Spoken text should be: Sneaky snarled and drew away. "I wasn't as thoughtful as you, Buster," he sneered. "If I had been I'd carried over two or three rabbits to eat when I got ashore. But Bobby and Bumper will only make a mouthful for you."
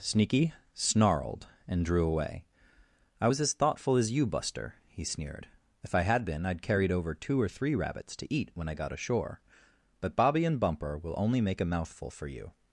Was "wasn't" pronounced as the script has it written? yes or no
no